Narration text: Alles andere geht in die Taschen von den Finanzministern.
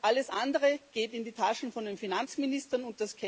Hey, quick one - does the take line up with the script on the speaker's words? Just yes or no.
yes